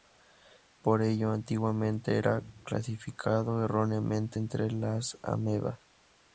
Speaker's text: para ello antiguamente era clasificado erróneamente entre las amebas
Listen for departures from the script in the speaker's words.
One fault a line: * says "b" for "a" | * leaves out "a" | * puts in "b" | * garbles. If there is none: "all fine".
* says "por" for "para"